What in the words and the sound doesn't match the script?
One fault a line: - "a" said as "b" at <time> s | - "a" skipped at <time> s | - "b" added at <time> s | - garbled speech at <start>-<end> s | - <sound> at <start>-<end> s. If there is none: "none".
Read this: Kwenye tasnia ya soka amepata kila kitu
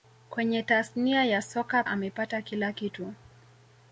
none